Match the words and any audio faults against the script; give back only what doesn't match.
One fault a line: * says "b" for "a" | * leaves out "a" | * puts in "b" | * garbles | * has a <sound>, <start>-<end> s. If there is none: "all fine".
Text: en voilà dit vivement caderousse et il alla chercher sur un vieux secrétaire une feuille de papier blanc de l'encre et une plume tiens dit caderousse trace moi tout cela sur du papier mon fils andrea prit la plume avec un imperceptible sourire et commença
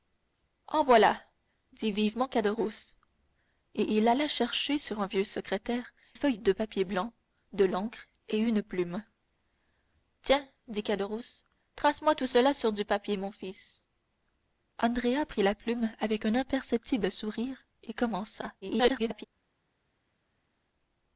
* leaves out "une"
* garbles